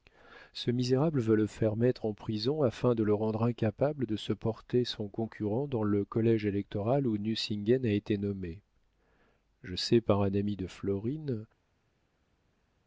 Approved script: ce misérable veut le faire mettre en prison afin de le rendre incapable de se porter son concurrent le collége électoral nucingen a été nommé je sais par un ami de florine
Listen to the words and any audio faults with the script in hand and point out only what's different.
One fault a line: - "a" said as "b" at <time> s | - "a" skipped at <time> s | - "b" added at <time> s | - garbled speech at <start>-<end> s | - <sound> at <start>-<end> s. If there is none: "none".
- "dans" added at 5.7 s
- "où" added at 7.0 s